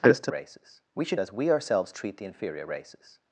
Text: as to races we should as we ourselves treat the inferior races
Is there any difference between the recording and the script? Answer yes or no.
no